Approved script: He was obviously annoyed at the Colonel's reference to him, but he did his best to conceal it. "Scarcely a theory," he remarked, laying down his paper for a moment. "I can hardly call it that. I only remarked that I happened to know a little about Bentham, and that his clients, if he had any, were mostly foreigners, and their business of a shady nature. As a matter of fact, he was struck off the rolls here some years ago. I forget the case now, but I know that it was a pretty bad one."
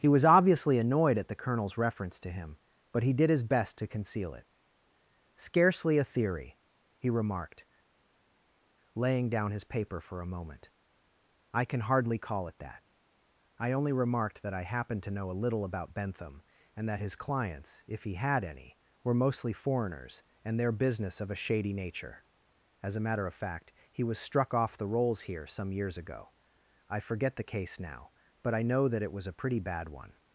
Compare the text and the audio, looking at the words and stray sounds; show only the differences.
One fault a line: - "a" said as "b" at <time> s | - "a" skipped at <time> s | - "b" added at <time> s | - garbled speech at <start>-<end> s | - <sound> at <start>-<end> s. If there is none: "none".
none